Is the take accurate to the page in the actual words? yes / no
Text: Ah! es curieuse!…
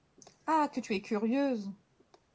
no